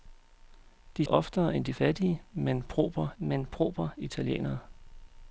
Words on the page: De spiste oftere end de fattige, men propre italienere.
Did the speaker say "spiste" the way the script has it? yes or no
no